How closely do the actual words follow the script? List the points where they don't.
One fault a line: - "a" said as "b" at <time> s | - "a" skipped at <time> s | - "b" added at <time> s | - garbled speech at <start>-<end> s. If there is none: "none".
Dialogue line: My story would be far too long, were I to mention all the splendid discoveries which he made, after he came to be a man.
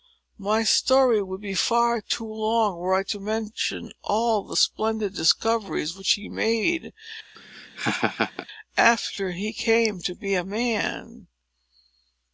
none